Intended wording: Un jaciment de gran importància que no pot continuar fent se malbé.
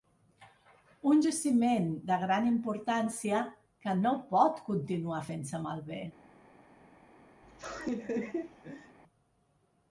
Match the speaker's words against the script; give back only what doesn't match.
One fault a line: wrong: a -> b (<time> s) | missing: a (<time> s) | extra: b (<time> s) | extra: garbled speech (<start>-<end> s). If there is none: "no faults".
no faults